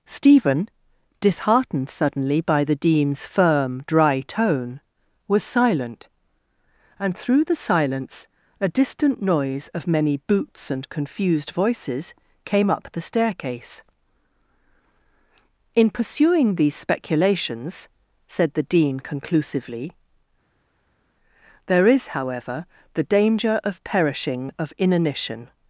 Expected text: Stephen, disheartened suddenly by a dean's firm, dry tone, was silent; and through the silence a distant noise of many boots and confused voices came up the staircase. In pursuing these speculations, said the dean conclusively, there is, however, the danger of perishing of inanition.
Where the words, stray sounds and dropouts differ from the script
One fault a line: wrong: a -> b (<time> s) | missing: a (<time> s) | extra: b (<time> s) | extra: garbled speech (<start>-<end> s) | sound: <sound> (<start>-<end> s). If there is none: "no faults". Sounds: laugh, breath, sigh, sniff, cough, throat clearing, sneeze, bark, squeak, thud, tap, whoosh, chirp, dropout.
wrong: a -> the (2.6 s)